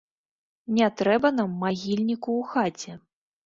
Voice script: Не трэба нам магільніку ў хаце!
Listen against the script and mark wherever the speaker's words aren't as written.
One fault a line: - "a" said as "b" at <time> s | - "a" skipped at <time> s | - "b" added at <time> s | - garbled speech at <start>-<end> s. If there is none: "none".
none